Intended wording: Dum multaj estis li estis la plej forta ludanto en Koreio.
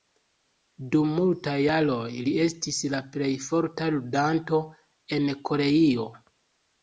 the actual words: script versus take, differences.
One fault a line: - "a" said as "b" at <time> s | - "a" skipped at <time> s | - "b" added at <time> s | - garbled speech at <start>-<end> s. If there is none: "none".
- "estis" said as "jaroj" at 1.6 s